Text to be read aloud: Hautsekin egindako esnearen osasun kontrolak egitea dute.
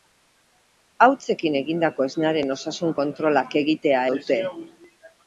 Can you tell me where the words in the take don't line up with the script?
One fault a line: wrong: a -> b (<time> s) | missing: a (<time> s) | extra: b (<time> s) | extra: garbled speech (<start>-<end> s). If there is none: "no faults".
no faults